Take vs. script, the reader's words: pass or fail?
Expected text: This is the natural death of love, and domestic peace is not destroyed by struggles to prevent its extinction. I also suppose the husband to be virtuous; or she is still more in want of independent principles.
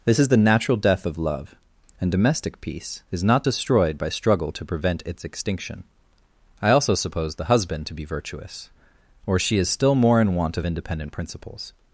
fail